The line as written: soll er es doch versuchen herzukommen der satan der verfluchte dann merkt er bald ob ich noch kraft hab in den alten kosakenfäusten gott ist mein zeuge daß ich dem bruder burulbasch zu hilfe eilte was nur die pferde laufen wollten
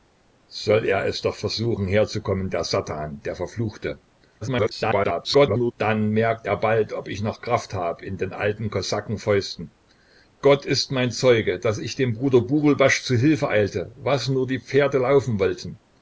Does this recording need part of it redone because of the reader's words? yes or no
yes